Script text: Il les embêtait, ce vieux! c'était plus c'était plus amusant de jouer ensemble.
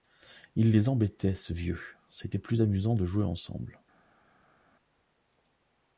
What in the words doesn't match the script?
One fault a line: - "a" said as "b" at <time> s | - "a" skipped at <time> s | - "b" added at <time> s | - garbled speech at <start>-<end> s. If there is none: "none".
- "c'était plus" skipped at 2.6 s